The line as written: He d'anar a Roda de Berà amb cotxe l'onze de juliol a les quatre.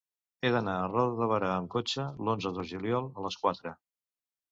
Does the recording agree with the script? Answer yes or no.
yes